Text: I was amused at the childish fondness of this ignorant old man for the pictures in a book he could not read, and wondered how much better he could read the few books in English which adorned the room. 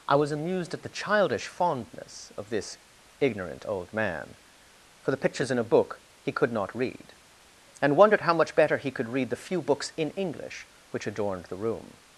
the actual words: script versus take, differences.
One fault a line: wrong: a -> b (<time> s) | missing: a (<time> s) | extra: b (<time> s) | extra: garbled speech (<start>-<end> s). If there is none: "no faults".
no faults